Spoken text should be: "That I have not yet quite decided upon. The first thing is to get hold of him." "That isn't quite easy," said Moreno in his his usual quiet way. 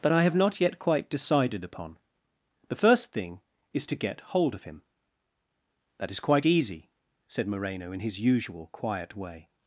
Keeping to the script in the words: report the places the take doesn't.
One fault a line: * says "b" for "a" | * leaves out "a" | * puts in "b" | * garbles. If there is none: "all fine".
* says "is" for "isn't"
* leaves out "his"